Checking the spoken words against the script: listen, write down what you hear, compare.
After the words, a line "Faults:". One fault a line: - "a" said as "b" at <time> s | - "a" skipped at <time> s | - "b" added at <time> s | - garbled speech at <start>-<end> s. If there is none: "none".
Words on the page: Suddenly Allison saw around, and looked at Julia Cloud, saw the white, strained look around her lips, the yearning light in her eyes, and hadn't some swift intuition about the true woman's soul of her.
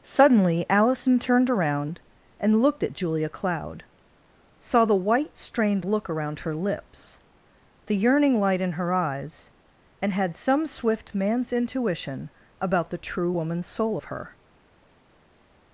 Suddenly Allison turned around, and looked at Julia Cloud, saw the white, strained look around her lips, the yearning light in her eyes, and had some swift man's intuition about the true woman's soul of her.
Faults:
- "saw" said as "turned" at 1.2 s
- "hadn't" said as "had" at 10.1 s
- "man's" added at 11.1 s